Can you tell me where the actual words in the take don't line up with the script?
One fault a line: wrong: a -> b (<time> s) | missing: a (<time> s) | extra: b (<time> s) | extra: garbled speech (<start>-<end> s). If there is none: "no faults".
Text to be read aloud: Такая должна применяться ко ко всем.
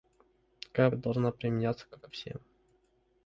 no faults